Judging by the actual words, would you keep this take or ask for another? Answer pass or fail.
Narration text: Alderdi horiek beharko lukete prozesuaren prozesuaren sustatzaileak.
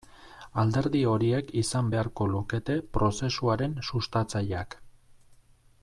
fail